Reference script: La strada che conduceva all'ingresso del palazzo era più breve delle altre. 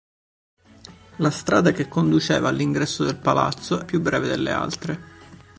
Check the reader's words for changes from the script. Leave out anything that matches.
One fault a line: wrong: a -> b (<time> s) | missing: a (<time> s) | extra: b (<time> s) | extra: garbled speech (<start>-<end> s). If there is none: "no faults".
missing: era (3.8 s)